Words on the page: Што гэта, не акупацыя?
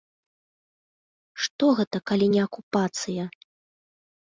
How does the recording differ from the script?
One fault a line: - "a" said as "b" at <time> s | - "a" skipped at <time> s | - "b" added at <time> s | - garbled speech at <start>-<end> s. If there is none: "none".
- "калі" added at 2.1 s